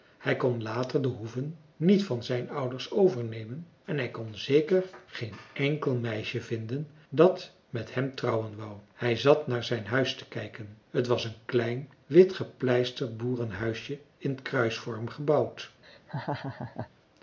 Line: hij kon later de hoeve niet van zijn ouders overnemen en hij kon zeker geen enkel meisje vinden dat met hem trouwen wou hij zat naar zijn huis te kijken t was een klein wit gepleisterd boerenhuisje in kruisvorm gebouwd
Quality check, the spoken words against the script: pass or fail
pass